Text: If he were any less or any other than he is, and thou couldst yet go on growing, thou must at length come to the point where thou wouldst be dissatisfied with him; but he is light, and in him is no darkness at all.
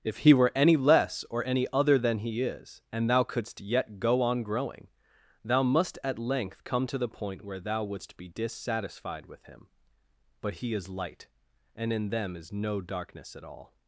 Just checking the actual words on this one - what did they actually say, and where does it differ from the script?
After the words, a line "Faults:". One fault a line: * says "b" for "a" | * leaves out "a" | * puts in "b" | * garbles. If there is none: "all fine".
If he were any less or any other than he is, and thou couldst yet go on growing, thou must at length come to the point where thou wouldst be dissatisfied with him; but he is light, and in them is no darkness at all.
Faults:
* says "them" for "him"